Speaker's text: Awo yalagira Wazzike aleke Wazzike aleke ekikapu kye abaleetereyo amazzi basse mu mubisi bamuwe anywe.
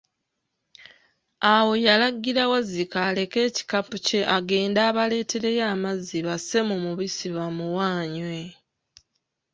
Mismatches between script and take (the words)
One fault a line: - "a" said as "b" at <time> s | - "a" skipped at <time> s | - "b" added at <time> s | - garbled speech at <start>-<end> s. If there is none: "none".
- "Wazzike aleke" skipped at 3.4 s
- "agende" added at 4.4 s